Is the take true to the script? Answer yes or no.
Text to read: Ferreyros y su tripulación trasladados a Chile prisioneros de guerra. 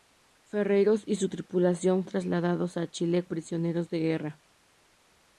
yes